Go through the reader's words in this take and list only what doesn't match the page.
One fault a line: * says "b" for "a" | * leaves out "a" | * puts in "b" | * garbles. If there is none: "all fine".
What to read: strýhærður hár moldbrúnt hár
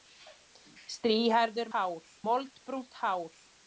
all fine